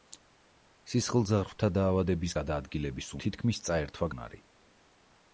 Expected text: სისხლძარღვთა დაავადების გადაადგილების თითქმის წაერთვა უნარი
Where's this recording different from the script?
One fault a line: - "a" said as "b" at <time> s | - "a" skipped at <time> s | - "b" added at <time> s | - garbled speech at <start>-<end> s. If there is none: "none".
none